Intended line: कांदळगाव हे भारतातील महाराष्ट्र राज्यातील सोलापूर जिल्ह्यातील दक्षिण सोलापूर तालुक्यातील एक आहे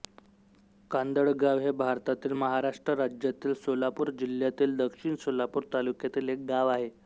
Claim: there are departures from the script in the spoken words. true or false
true